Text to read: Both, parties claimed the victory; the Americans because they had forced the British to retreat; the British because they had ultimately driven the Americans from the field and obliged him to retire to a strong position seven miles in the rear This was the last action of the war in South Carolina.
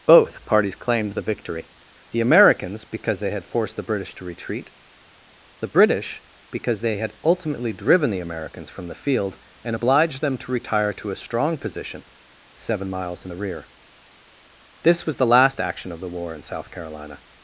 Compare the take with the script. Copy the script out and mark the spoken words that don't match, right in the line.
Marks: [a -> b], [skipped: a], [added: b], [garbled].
Both, parties claimed the victory; the Americans because they had forced the British to retreat; the British because they had ultimately driven the Americans from the field and obliged [him -> them] to retire to a strong position seven miles in the rear This was the last action of the war in South Carolina.